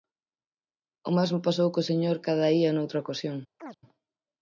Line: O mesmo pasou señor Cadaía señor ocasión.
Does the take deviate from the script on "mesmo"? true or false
false